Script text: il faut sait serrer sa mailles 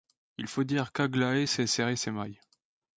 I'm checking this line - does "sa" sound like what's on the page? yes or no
no